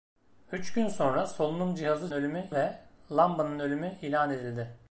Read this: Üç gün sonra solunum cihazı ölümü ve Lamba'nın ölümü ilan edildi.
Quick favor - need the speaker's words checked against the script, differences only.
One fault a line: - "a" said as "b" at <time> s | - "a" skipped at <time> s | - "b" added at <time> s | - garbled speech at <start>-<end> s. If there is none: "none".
none